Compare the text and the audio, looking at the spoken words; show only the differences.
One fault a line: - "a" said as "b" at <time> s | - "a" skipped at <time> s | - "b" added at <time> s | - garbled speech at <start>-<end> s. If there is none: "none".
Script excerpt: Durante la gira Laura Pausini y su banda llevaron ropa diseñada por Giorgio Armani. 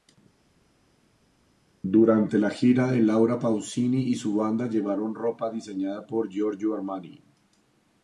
none